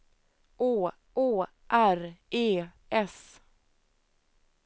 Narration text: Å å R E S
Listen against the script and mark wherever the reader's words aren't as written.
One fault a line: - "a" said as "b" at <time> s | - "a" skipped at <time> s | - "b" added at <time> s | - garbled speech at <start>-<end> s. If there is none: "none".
none